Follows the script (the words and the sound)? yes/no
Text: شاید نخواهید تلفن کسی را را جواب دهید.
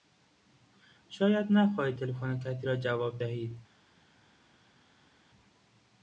no